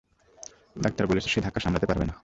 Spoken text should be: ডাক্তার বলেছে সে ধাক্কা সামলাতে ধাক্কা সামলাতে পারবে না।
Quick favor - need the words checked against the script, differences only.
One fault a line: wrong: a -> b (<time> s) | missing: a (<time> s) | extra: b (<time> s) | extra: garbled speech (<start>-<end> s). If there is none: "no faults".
missing: ধাক্কা সামলাতে (1.9 s)